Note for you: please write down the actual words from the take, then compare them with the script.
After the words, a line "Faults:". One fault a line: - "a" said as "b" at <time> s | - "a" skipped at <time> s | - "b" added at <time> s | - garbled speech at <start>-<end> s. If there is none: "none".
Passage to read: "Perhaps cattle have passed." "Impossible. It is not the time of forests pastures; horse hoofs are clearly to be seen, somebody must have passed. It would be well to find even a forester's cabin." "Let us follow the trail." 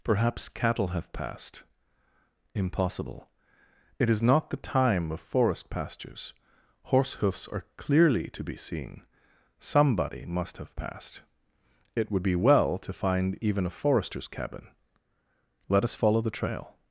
"Perhaps cattle have passed." "Impossible. It is not the time of forest pastures; horse hoofs are clearly to be seen, somebody must have passed. It would be well to find even a forester's cabin." "Let us follow the trail."
Faults:
- "forests" said as "forest" at 5.2 s